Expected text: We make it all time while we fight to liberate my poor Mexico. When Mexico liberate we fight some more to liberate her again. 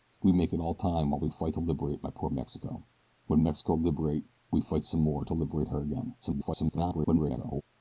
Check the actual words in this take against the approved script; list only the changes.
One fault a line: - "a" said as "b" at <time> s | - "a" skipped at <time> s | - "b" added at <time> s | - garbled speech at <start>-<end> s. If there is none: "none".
- garbled speech at 6.2-7.6 s